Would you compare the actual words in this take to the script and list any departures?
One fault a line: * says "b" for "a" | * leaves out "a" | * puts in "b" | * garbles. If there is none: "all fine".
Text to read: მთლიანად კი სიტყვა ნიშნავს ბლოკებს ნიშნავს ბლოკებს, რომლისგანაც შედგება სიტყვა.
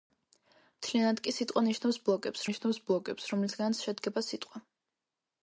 all fine